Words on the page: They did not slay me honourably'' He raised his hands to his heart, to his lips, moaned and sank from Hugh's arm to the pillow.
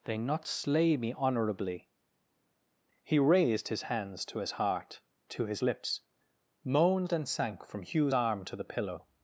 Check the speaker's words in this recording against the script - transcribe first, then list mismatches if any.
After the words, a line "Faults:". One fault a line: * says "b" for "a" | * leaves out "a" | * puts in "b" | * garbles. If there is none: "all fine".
They not slay me honourably'' He raised his hands to his heart, to his lips, moaned and sank from Hugh's arm to the pillow.
Faults:
* leaves out "did"